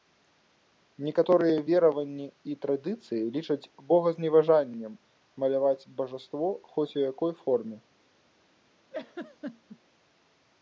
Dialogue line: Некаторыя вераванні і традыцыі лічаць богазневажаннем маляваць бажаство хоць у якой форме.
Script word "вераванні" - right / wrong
right